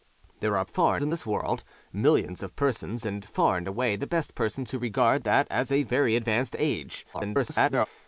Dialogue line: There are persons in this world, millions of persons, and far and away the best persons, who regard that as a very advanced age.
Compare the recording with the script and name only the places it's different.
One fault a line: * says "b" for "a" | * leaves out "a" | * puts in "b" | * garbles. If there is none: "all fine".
* says "far" for "persons"
* garbles